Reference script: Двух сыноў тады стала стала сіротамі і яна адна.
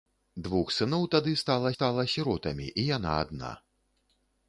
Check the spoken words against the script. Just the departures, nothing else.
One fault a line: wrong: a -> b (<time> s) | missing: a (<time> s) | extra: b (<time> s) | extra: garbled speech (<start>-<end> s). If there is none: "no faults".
no faults